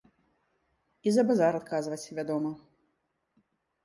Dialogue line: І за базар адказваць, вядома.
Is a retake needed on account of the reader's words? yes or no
no